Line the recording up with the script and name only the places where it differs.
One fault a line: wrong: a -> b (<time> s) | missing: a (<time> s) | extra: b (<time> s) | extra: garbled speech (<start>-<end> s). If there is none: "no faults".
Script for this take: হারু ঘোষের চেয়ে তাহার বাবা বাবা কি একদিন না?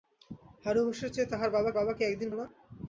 no faults